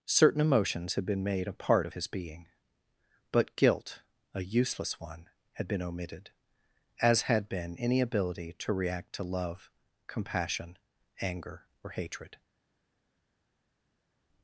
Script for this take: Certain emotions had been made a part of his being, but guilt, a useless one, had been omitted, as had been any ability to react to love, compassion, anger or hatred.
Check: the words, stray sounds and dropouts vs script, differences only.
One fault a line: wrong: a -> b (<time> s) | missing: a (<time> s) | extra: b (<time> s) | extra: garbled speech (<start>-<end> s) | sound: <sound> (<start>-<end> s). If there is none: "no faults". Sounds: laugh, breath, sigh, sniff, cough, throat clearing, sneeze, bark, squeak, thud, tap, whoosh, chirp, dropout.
no faults